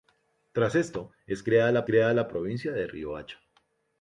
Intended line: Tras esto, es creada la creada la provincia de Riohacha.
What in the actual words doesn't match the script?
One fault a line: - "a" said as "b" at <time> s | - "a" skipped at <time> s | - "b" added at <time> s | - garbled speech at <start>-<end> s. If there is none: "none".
none